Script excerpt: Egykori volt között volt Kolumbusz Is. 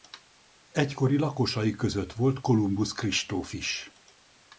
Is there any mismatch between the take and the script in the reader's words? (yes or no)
yes